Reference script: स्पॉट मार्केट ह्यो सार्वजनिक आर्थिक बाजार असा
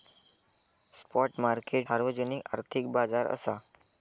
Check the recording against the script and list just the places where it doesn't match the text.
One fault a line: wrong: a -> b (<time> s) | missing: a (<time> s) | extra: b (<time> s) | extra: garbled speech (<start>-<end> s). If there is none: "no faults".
missing: ह्यो (1.9 s)